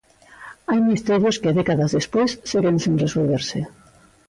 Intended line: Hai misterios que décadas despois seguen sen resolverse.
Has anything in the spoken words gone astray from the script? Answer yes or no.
no